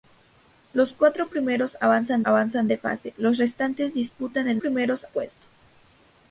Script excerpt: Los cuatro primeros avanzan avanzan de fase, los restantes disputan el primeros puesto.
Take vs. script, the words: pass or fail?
pass